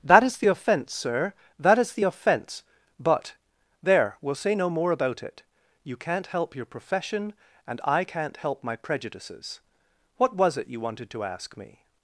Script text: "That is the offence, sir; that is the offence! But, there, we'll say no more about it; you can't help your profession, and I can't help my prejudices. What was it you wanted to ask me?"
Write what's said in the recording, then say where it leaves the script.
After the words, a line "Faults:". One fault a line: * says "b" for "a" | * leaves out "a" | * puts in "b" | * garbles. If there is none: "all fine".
"That is the offence, sir; that is the offence! But, there, we'll say no more about it; you can't help your profession, and I can't help my prejudices. What was it you wanted to ask me?"
Faults:
all fine